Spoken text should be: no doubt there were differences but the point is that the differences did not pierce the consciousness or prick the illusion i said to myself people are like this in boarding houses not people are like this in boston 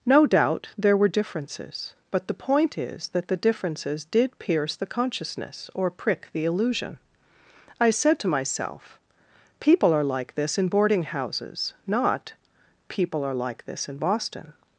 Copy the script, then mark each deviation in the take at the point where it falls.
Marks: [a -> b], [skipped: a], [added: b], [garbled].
no doubt there were differences but the point is that the differences did [skipped: not] pierce the consciousness or prick the illusion i said to myself people are like this in boarding houses not people are like this in boston